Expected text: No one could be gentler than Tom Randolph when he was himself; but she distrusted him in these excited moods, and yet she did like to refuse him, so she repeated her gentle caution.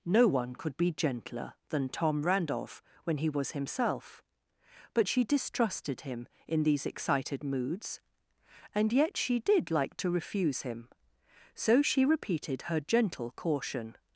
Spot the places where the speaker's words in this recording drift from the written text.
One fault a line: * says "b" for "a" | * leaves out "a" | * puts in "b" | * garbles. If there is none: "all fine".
all fine